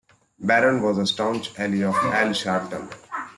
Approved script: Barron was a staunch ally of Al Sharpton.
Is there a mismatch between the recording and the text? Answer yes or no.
no